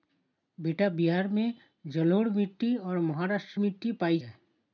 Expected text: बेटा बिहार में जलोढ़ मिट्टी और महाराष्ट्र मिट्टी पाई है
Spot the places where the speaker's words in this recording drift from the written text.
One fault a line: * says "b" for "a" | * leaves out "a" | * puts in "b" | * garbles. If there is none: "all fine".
all fine